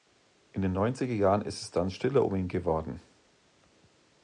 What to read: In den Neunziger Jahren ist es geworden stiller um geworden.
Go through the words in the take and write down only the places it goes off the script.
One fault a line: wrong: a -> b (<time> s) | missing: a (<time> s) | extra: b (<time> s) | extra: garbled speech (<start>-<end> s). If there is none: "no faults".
wrong: geworden -> dann (1.7 s)
extra: ihn (2.4 s)